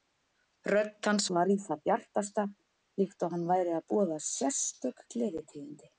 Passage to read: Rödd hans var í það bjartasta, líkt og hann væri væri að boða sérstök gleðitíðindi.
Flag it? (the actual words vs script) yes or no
yes